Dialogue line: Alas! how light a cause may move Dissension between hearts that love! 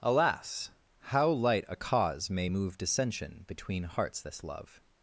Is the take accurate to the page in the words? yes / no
no